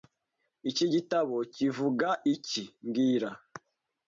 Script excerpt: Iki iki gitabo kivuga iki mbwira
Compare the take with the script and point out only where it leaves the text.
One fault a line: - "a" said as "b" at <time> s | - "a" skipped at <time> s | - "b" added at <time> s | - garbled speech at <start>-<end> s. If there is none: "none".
- "iki" skipped at 0.8 s